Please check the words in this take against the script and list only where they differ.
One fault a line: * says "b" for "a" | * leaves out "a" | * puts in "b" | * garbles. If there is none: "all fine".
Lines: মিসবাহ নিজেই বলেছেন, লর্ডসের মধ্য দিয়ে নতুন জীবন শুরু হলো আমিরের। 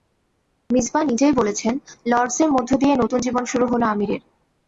all fine